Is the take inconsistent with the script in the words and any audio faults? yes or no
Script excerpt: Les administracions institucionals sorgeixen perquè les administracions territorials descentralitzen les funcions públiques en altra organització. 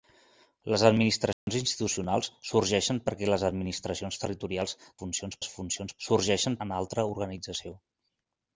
yes